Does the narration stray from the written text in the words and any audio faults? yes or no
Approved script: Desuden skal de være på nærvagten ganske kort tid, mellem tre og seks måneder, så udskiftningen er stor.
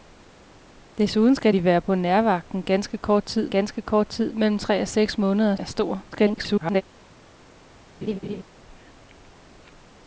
yes